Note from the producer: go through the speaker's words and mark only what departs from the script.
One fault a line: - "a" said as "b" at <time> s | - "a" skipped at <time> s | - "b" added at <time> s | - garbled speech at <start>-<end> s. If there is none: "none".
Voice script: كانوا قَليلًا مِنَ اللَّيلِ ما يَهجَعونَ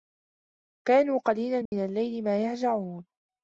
none